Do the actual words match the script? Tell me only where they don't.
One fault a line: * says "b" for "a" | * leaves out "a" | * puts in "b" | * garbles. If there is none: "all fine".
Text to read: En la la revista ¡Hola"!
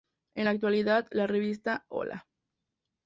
* puts in "actualidad"